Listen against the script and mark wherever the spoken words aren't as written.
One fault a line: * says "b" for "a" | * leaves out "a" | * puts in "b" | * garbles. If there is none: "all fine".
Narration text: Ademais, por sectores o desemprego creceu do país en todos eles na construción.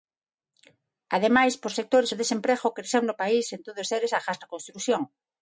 * says "no" for "do"
* puts in "agás"